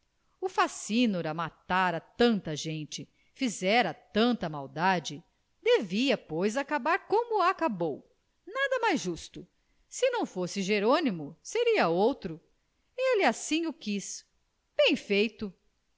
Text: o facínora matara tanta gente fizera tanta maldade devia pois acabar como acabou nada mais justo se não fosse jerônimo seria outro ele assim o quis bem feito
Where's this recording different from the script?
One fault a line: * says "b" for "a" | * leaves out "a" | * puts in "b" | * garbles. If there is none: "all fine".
all fine